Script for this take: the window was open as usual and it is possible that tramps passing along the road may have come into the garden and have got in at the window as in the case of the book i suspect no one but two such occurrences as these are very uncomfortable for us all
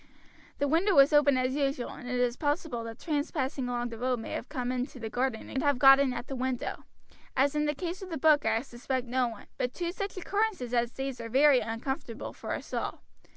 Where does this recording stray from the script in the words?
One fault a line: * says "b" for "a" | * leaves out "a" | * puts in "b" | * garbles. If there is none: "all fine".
all fine